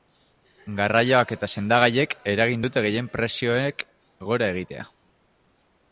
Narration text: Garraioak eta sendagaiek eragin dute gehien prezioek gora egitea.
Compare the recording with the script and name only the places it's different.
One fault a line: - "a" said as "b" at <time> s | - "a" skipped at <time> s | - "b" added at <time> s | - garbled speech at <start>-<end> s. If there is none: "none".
none